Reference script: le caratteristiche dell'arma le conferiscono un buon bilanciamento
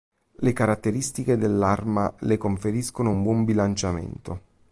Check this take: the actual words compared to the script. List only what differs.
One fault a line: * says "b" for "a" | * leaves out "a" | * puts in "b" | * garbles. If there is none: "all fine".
all fine